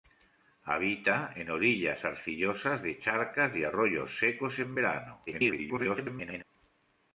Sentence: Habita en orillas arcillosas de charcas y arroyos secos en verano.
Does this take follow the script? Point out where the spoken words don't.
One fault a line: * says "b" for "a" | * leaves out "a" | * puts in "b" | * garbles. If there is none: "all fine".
* garbles